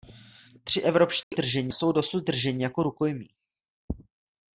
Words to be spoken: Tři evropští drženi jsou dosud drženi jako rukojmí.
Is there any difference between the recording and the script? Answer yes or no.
no